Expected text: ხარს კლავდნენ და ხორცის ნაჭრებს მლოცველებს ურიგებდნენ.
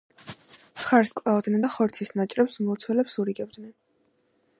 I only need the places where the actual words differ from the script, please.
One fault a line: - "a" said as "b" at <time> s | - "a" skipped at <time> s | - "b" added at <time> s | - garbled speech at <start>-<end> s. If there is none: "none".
none